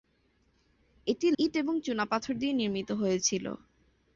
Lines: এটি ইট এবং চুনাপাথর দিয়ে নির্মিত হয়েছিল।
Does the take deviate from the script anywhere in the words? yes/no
no